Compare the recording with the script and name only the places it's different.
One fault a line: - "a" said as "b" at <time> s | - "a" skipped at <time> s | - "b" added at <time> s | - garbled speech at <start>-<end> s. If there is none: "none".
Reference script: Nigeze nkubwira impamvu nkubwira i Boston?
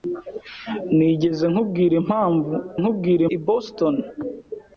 none